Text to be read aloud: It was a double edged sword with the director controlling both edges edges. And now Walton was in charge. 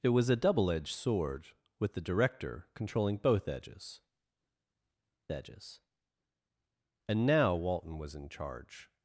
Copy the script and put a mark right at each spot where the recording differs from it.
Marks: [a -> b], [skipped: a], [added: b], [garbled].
It was a double edged sword with the director controlling both edges edges. And now Walton was in charge.